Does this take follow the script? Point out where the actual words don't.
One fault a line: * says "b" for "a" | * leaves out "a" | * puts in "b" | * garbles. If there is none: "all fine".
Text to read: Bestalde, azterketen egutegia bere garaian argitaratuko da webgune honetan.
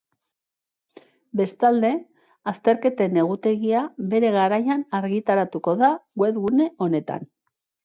all fine